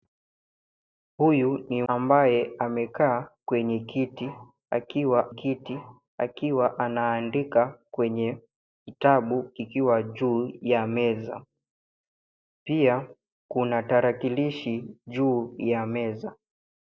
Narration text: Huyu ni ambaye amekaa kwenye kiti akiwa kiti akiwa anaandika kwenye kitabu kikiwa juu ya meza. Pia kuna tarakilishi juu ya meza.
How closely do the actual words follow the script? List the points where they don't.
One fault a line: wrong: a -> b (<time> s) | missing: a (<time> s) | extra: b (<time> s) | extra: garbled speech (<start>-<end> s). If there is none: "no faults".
no faults